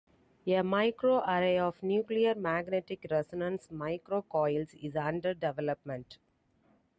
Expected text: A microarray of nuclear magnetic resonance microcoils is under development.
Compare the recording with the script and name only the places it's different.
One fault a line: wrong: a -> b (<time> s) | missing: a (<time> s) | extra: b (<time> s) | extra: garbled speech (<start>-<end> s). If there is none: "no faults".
no faults